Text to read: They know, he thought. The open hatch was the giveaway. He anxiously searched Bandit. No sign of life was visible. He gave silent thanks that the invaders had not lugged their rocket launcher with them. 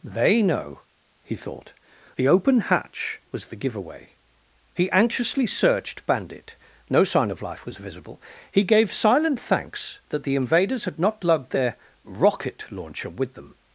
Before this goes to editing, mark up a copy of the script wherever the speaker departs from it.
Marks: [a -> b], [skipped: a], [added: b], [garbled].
They know, he thought. The open hatch was the giveaway. He anxiously searched Bandit. No sign of life was visible. He gave silent thanks that the invaders had not lugged their rocket launcher with them.